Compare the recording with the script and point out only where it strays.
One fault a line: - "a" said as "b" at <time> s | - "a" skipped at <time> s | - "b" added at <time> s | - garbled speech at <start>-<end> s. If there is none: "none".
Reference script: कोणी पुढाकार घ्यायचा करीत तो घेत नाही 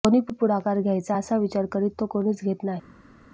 - "असा विचार" added at 1.1 s
- "कोणीच" added at 2.1 s